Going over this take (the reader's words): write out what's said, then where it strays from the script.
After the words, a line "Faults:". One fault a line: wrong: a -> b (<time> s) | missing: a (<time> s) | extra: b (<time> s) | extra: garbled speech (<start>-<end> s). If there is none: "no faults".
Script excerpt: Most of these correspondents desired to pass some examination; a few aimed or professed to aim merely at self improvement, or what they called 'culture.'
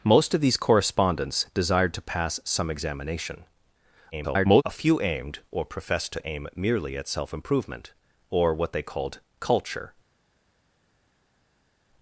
Most of these correspondents desired to pass some examination; [garbled] a few aimed or professed to aim merely at self improvement, or what they called 'culture.'
Faults:
extra: garbled speech (4.1-4.6 s)